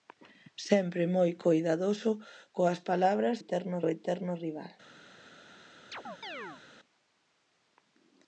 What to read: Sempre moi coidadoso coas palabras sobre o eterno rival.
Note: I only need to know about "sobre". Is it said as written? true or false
false